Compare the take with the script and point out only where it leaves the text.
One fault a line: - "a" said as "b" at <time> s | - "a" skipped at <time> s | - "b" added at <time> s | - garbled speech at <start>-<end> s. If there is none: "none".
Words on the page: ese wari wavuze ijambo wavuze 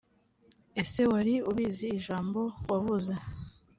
- "wavuze" said as "ubizi" at 1.5 s